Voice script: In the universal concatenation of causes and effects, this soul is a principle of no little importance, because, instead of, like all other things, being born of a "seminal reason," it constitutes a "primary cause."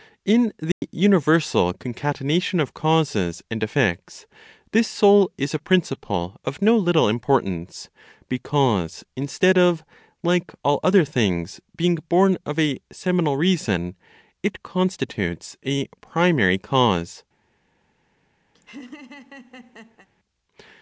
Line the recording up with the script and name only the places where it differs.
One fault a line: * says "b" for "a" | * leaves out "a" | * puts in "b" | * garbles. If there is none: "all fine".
all fine